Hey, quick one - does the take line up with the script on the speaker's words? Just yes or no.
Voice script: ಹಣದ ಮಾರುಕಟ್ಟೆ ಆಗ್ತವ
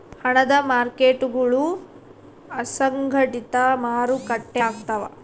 no